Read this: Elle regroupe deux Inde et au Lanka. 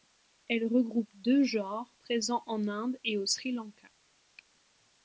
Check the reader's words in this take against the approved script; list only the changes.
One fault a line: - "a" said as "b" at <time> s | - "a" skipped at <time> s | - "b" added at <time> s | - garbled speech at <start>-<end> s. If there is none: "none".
- "genres présents en" added at 1.4 s
- "Sri" added at 3.3 s